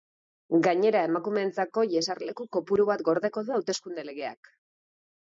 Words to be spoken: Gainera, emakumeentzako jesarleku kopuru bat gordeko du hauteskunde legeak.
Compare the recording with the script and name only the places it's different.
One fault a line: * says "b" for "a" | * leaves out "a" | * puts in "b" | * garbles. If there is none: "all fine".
all fine